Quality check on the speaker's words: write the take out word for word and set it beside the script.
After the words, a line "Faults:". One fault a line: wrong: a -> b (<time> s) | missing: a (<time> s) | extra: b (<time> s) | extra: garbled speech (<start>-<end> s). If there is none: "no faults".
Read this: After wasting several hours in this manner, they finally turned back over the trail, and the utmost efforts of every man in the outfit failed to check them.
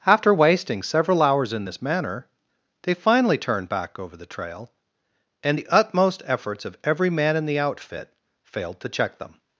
After wasting several hours in this manner, they finally turned back over the trail, and the utmost efforts of every man in the outfit failed to check them.
Faults:
no faults